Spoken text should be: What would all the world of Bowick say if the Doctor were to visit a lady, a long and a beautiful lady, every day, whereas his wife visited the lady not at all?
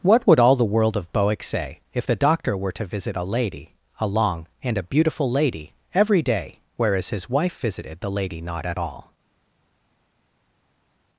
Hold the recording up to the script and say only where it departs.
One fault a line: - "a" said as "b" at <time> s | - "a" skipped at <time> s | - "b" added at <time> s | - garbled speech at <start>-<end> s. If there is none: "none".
none